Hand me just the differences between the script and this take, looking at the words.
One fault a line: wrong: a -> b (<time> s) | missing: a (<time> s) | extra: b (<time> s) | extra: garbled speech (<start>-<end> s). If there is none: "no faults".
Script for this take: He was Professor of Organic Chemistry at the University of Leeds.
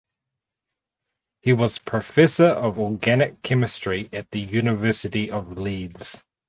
no faults